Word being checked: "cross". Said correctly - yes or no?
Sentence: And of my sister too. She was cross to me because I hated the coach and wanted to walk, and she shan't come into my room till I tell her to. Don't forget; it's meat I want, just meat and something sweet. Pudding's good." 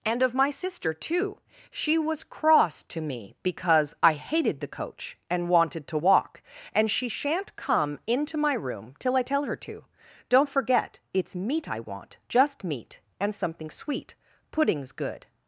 yes